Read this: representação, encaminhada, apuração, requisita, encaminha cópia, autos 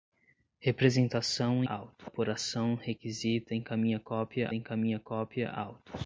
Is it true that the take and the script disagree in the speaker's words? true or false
true